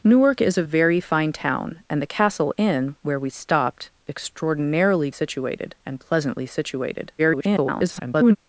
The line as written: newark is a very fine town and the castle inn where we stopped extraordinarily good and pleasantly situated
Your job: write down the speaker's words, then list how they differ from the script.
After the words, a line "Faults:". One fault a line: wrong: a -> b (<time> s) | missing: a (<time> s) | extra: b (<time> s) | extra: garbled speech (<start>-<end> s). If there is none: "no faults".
newark is a very fine town and the castle inn where we stopped extraordinarily situated and pleasantly situated [garbled]
Faults:
wrong: good -> situated (5.1 s)
extra: garbled speech (7.2-8.4 s)